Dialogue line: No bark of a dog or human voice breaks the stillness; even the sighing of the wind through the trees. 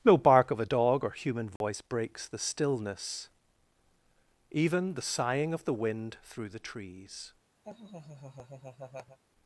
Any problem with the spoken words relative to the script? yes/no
no